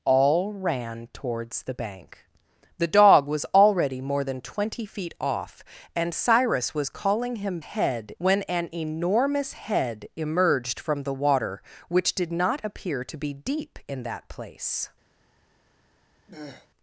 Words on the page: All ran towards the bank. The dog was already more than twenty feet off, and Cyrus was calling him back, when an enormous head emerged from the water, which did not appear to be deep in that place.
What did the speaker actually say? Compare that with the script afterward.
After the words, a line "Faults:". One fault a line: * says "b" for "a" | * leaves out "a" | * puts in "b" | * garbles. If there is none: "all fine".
All ran towards the bank. The dog was already more than twenty feet off, and Cyrus was calling him head, when an enormous head emerged from the water, which did not appear to be deep in that place.
Faults:
* says "head" for "back"